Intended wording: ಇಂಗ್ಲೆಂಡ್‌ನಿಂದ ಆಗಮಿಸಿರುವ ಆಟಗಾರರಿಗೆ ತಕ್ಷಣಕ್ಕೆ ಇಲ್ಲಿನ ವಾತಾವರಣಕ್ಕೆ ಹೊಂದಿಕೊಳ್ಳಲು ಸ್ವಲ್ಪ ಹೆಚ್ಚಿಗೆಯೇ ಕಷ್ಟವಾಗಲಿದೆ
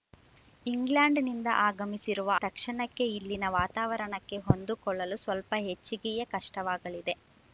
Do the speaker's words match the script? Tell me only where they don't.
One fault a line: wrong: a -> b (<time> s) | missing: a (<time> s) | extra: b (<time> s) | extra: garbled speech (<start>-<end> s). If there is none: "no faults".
missing: ಆಟಗಾರರಿಗೆ (2.3 s)